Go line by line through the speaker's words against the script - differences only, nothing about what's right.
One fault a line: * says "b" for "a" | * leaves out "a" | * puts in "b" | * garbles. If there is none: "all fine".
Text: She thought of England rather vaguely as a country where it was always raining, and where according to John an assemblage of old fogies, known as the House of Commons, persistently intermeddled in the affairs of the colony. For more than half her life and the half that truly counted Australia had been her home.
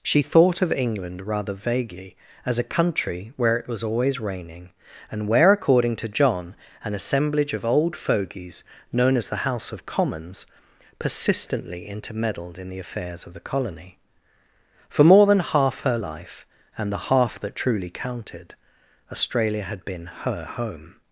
all fine